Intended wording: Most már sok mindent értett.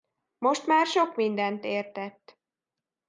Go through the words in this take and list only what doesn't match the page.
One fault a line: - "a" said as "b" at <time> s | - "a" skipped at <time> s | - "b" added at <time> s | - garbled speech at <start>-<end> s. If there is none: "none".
none